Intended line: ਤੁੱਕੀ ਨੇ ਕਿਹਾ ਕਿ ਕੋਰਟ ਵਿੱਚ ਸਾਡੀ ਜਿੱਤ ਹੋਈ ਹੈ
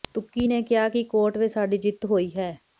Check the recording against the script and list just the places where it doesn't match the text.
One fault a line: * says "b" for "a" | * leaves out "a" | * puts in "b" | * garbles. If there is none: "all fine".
all fine